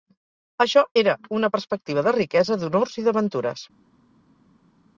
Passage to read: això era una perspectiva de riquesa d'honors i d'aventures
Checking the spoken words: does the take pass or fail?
pass